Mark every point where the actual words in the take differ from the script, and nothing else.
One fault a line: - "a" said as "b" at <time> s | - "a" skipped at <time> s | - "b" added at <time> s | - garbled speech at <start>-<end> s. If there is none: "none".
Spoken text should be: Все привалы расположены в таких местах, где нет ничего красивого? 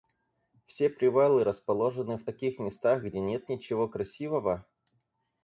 none